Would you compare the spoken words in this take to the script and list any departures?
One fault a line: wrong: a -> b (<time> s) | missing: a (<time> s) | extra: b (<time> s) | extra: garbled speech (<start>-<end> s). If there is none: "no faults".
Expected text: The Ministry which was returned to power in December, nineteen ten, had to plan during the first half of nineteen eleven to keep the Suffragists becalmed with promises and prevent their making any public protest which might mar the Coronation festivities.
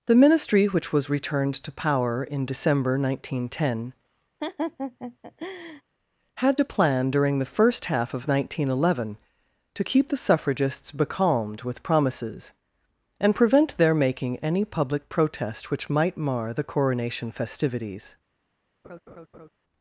no faults